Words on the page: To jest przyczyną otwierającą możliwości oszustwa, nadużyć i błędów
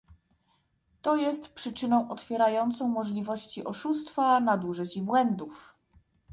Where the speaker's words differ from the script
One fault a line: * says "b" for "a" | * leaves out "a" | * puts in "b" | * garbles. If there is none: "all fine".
all fine